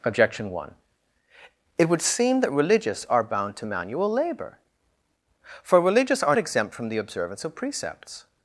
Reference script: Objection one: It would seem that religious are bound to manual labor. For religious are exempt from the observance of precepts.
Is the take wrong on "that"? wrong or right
right